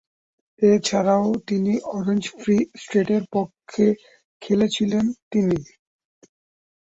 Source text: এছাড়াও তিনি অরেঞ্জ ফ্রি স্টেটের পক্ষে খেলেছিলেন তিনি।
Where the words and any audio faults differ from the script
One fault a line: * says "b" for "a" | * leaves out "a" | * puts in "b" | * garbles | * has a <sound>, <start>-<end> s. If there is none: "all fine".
all fine